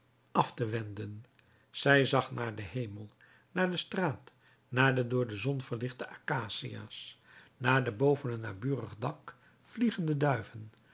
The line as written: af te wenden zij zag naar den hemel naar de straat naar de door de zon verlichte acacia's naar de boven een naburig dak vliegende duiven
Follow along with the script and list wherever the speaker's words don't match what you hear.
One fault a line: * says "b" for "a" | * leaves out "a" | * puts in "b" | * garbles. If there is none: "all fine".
all fine